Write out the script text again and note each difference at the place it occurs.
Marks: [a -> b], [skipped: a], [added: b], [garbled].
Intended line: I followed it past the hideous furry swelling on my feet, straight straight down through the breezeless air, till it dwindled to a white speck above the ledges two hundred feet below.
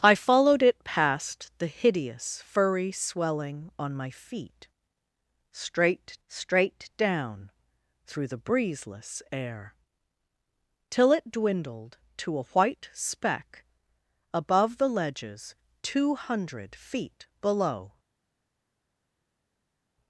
I followed it past the hideous furry swelling on my feet, straight straight down through the breezeless air, till it dwindled to a white speck above the ledges two hundred feet below.